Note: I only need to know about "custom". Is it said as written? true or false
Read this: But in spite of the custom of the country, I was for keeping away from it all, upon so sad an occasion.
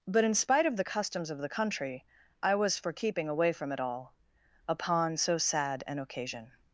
false